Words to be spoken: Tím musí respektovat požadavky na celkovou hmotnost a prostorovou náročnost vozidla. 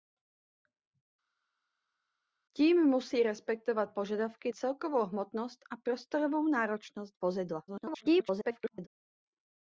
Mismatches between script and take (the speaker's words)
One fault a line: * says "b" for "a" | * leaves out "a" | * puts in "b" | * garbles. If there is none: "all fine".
* leaves out "na"
* garbles